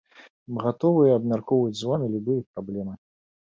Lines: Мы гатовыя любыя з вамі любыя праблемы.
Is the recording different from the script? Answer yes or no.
yes